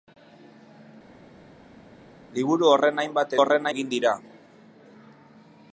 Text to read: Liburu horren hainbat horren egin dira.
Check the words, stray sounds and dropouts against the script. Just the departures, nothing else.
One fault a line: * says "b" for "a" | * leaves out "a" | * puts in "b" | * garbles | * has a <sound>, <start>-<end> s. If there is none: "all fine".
all fine